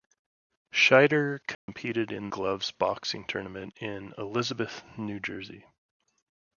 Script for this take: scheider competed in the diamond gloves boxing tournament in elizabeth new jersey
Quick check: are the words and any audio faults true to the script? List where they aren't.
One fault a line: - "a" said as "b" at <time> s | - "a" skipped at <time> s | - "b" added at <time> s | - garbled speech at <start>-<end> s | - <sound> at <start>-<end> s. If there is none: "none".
- dropout at 1.5-1.7 s
- "the diamond" skipped at 2.3 s